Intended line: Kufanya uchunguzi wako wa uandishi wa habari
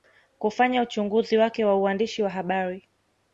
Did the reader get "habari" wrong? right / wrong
right